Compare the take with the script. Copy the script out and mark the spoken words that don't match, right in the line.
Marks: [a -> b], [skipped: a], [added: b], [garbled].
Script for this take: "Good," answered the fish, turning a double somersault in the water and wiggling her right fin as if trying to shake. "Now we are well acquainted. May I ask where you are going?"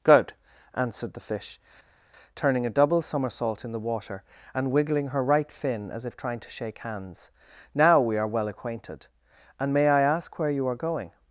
"Good," answered the fish, turning a double somersault in the water and wiggling her right fin as if trying to shake. [added: hands] "Now we are well acquainted. [added: And] May I ask where you are going?"